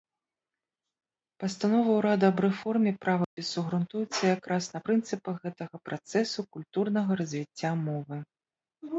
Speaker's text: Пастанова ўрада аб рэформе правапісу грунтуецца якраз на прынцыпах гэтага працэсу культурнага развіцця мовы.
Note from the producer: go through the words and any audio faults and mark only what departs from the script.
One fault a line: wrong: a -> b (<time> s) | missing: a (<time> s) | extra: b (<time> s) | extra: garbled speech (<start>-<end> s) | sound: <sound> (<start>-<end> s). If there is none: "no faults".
sound: dropout (3.2-3.4 s)